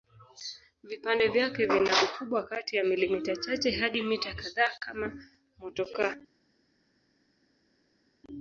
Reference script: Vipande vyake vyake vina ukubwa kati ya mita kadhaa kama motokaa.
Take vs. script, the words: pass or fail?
fail